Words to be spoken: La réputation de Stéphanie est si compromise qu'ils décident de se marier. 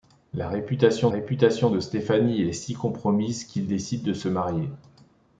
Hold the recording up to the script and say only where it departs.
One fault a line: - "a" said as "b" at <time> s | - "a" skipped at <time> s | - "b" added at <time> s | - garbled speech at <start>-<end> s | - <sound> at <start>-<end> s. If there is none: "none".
- "réputation" added at 1.1 s